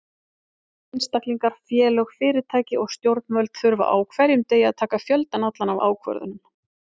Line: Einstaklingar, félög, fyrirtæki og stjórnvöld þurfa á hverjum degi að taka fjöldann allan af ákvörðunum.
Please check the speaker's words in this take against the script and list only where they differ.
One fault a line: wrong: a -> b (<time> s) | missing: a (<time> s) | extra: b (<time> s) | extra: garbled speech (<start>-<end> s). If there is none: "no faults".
no faults